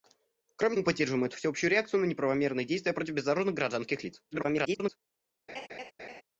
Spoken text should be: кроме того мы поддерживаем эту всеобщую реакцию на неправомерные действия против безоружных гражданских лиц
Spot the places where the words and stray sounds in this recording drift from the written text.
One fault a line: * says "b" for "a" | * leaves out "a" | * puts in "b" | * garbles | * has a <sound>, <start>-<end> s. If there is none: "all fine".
* leaves out "того"
* garbles
* has a laugh, 5.5-6.2 s